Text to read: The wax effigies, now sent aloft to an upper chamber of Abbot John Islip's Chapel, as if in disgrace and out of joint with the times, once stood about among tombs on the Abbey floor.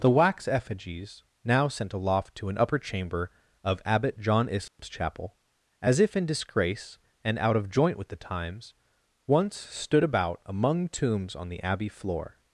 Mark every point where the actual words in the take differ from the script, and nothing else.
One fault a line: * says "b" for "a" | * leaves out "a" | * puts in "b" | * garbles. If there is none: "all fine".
all fine